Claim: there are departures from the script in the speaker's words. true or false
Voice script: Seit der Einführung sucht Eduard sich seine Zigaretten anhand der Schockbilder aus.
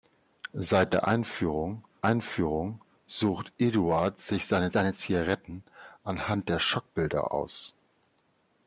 true